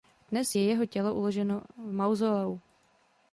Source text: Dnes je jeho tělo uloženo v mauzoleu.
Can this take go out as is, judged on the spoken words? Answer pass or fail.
pass